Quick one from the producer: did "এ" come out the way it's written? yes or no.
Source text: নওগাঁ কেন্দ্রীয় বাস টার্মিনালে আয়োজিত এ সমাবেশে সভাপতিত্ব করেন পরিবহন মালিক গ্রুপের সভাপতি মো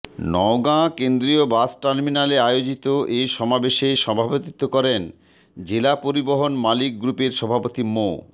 yes